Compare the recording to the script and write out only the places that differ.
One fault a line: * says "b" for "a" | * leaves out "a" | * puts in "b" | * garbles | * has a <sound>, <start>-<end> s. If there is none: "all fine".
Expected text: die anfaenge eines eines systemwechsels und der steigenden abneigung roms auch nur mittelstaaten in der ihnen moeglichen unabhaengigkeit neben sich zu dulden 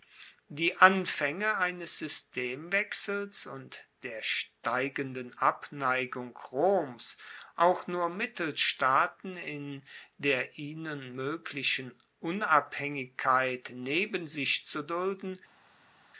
* leaves out "eines"